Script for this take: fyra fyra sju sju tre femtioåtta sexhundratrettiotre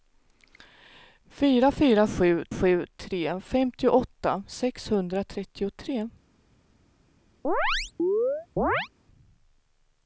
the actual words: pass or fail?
pass